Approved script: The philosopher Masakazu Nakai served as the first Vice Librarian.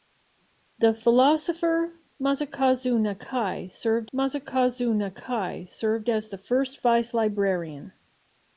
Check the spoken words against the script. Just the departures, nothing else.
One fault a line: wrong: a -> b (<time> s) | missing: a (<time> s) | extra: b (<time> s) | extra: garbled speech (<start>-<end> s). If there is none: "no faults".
extra: Masakazu Nakai served (4.1 s)